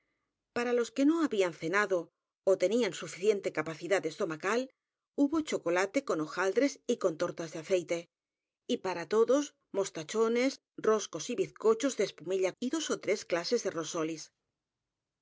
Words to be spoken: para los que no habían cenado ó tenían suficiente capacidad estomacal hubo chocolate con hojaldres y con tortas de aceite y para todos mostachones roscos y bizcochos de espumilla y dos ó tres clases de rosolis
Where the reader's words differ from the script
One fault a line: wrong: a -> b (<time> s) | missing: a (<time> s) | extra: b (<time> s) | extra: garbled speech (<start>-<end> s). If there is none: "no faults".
no faults